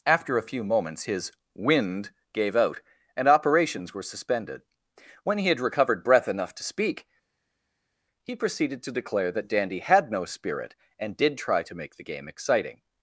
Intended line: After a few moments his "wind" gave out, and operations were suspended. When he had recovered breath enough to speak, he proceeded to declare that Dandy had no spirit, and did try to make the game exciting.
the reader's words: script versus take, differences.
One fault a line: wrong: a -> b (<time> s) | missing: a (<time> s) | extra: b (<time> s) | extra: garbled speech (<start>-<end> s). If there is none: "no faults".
no faults